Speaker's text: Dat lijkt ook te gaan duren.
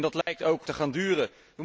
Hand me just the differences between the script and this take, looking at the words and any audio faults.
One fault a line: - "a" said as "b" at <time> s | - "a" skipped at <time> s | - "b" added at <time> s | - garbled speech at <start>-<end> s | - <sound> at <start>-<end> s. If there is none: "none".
- dropout at 0.2-0.3 s